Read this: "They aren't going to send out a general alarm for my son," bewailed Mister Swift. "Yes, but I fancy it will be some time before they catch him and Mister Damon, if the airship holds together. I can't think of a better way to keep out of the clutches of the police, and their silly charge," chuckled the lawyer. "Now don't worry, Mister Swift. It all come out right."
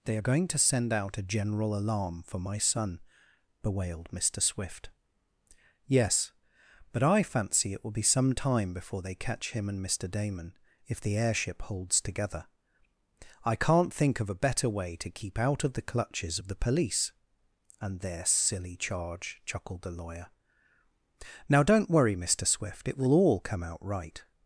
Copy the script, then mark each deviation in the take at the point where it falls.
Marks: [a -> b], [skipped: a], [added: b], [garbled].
"They [aren't -> are] going to send out a general alarm for my son," bewailed Mister Swift. "Yes, but I fancy it will be some time before they catch him and Mister Damon, if the airship holds together. I can't think of a better way to keep out of the clutches of the police, and their silly charge," chuckled the lawyer. "Now don't worry, Mister Swift. It [added: will] all come out right."